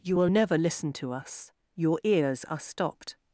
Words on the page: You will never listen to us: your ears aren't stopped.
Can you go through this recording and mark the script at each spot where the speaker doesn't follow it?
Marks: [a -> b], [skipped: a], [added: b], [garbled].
You will never listen to us: your ears [aren't -> are] stopped.